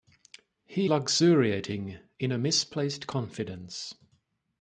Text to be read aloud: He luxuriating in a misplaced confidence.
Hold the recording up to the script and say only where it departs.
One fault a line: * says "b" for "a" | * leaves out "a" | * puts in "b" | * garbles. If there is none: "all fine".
all fine